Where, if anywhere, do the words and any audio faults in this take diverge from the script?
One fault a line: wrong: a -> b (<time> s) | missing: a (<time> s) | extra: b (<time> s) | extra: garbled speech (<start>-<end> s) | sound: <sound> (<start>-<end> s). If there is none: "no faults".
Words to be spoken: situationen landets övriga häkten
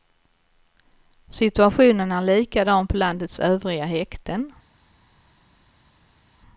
extra: är likadan på (2.1 s)